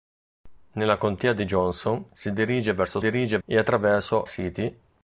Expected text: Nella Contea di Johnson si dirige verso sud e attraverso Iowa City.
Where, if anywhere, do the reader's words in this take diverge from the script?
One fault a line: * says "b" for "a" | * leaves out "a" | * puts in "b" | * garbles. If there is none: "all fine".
* says "dirige" for "sud"
* leaves out "Iowa"